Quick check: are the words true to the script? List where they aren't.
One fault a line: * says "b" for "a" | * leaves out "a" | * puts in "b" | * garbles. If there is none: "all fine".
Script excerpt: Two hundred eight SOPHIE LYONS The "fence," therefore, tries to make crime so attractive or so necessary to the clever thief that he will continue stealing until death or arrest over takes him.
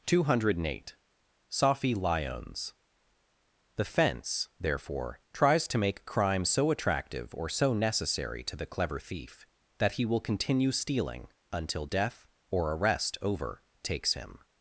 all fine